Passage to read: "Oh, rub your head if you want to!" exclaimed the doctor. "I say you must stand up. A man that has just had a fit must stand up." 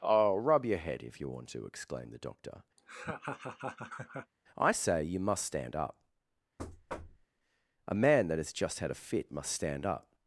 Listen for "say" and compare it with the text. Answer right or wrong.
right